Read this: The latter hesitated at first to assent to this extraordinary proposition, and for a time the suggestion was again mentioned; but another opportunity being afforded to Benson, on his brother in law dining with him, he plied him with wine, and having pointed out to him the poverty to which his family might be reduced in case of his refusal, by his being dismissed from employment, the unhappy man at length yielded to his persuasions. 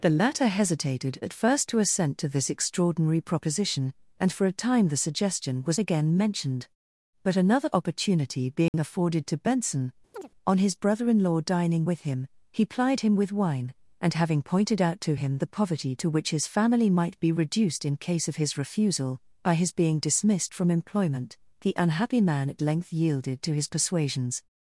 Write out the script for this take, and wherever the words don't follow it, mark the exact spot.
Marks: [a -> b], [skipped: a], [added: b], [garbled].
The latter hesitated at first to assent to this extraordinary proposition, and for a time the suggestion was again mentioned; but another opportunity being afforded to Benson, on his brother in law dining with him, he plied him with wine, and having pointed out to him the poverty to which his family might be reduced in case of his refusal, by his being dismissed from employment, the unhappy man at length yielded to his persuasions.